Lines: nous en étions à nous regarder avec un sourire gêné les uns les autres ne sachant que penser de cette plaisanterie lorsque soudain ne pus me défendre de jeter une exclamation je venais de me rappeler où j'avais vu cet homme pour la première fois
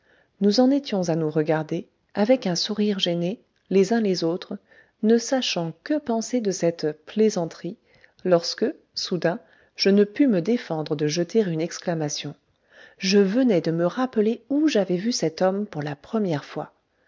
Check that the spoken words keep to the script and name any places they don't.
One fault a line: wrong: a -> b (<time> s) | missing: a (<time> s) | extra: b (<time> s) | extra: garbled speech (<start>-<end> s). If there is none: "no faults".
extra: je (9.8 s)